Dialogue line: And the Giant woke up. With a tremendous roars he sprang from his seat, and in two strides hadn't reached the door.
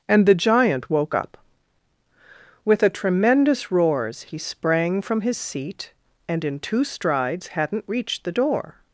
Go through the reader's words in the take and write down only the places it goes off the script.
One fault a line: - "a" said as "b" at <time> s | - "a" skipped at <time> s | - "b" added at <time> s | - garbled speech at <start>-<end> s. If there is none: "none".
none